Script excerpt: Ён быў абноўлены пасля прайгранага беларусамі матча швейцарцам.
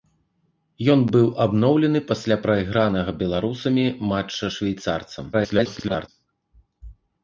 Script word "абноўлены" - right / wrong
right